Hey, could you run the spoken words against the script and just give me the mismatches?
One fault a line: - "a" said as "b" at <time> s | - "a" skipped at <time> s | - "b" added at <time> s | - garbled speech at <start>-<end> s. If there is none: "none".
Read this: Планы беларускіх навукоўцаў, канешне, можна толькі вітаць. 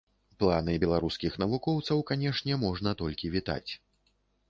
none